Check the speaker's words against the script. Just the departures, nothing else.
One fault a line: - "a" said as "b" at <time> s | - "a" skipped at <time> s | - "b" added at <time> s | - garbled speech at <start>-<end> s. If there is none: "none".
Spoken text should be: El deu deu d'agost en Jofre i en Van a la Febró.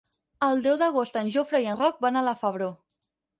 - "deu" skipped at 0.8 s
- "Roc" added at 1.8 s